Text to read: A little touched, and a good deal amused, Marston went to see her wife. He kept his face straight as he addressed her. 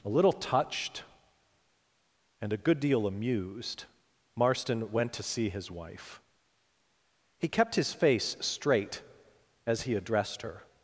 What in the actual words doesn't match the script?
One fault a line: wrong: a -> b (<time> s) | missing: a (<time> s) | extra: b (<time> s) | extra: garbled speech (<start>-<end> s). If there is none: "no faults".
wrong: her -> his (5.5 s)